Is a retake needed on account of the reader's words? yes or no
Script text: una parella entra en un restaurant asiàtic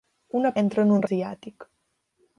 yes